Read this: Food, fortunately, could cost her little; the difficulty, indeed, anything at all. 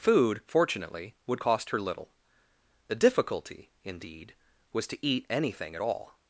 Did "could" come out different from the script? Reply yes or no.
yes